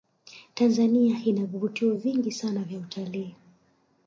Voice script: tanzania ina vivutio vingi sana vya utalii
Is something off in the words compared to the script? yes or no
no